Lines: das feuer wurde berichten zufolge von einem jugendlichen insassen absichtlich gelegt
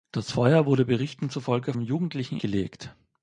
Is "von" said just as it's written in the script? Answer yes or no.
no